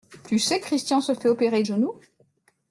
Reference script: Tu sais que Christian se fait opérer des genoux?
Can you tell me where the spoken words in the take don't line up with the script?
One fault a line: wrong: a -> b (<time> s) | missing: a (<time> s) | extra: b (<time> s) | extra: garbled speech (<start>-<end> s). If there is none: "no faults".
missing: que (0.6 s)
missing: des (1.6 s)